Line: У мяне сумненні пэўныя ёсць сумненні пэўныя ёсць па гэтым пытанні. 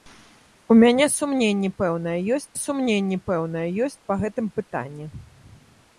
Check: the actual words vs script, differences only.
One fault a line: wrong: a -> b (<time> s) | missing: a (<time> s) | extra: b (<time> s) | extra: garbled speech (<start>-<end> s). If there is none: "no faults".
no faults